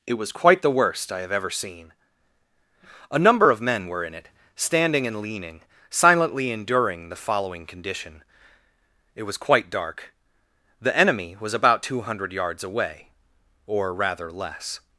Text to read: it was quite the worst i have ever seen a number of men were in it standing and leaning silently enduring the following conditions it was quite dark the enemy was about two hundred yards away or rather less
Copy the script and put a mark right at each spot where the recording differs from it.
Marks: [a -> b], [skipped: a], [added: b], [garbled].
it was quite the worst i have ever seen a number of men were in it standing and leaning silently enduring the following [conditions -> condition] it was quite dark the enemy was about two hundred yards away or rather less